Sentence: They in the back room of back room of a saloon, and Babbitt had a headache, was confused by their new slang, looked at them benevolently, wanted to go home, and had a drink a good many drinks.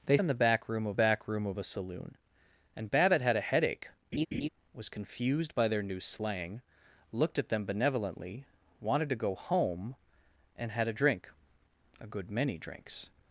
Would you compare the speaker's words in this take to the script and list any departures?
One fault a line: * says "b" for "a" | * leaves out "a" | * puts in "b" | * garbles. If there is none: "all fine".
all fine